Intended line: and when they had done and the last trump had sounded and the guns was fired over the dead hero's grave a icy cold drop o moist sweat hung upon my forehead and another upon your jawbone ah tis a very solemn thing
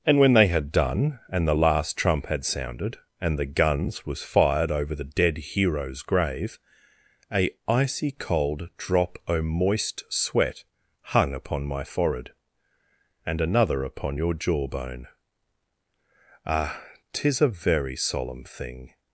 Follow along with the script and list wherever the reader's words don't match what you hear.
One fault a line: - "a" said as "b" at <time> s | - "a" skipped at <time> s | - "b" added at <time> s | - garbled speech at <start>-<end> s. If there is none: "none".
none